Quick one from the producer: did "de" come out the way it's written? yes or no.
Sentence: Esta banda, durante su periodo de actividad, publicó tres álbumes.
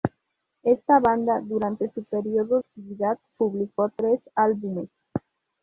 no